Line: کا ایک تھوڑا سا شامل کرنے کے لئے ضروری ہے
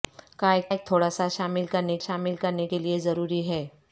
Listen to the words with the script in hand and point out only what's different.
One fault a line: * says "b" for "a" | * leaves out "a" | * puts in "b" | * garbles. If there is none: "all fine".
* puts in "ایک"
* puts in "شامل کرنے"